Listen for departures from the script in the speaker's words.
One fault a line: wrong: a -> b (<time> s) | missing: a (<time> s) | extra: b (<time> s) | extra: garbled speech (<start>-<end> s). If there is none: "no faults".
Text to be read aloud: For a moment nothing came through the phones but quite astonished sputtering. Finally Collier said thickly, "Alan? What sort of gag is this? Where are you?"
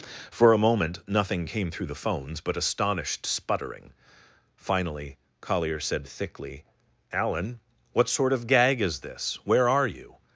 missing: quite (2.6 s)